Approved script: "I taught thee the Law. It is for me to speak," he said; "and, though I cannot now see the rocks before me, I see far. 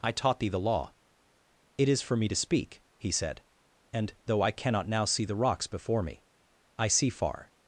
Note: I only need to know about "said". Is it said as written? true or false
true